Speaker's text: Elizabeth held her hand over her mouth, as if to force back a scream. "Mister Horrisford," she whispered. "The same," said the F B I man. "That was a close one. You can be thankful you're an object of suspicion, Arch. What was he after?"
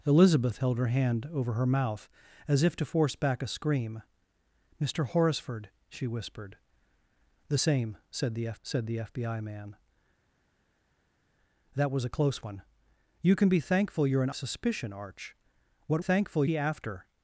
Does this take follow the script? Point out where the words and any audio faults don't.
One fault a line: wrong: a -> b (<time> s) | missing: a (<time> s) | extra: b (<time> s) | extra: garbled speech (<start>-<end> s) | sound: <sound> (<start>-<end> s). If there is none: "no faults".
extra: said the F (8.6 s)
missing: object of (14.3 s)
wrong: was -> thankful (16.0 s)